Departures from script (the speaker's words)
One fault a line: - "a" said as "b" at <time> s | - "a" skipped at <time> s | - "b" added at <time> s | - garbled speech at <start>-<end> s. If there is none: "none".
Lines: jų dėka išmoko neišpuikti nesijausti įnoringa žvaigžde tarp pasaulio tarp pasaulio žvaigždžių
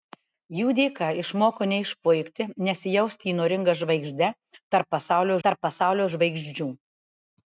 none